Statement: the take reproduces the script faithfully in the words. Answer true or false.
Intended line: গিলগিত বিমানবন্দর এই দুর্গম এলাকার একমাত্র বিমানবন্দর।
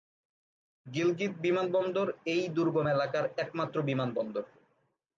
true